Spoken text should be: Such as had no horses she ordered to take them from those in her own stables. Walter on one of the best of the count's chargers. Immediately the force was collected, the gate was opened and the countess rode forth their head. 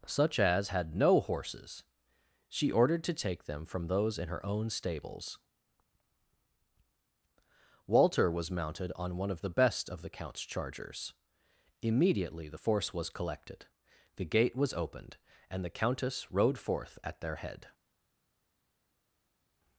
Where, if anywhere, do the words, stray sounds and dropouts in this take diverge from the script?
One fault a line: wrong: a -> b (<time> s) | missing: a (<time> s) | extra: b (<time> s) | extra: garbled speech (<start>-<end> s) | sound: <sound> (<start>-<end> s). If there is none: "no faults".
extra: was mounted (8.3 s)
extra: at (17.0 s)